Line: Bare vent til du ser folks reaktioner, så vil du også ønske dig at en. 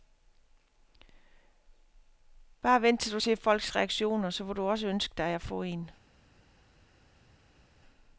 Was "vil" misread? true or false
false